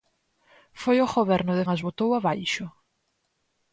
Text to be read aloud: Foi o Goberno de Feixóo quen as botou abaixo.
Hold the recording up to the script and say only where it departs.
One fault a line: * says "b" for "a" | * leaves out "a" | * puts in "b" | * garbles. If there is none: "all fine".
* leaves out "Feixóo quen"